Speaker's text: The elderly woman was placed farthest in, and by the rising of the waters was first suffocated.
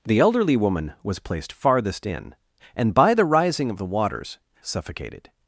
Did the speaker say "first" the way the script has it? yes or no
no